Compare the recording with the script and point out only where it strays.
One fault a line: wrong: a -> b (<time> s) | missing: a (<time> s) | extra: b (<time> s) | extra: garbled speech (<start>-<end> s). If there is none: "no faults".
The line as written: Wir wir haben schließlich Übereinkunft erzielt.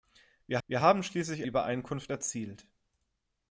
no faults